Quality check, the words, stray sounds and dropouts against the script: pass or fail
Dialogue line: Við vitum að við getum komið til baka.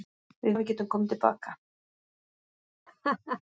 fail